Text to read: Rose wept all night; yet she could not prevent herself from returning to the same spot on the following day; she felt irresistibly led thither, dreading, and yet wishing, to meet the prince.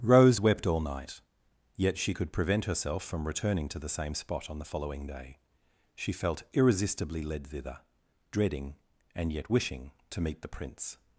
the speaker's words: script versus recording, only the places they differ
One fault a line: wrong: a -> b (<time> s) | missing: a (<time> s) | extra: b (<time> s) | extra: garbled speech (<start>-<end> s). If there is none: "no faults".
missing: not (2.3 s)